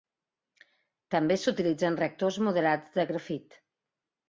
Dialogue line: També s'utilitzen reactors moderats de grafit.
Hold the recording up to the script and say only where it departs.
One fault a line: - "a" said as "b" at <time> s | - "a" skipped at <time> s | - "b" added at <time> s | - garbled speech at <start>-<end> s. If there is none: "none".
none